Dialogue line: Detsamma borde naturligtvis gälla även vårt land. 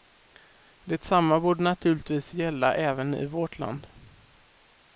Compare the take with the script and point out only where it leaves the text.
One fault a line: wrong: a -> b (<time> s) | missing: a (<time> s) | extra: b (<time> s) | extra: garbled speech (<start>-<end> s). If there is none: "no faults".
extra: i (3.1 s)